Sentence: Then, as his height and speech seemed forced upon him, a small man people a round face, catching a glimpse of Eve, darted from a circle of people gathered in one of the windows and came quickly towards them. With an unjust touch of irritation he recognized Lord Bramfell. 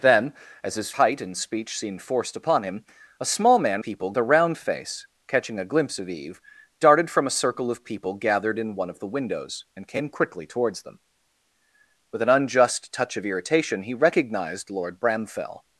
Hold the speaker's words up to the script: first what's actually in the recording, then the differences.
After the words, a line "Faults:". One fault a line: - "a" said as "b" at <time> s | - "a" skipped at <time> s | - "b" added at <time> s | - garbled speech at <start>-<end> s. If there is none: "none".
Then, as his height and speech seemed forced upon him, a small man people a round face, catching a glimpse of Eve, darted from a circle of people gathered in one of the windows and came quickly towards them. With an unjust touch of irritation he recognized Lord Bramfell.
Faults:
none